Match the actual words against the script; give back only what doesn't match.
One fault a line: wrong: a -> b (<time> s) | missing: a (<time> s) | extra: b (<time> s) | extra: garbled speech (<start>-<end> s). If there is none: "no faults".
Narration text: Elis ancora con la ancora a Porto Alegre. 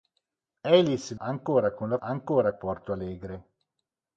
no faults